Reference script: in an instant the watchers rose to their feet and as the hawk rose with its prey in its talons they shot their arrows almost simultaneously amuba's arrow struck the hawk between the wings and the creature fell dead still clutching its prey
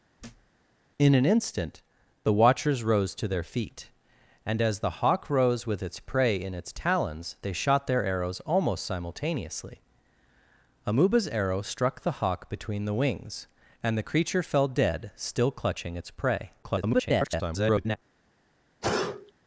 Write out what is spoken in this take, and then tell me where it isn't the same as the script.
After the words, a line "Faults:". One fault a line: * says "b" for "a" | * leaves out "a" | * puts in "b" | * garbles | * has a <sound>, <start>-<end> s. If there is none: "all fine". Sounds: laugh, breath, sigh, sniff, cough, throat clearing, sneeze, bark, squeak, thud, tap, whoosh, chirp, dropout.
in an instant the watchers rose to their feet and as the hawk rose with its prey in its talons they shot their arrows almost simultaneously amuba's arrow struck the hawk between the wings and the creature fell dead still clutching its prey [garbled]
Faults:
* has a thud, 0.2-0.5 s
* garbles
* has a sneeze, 18.8-19.3 s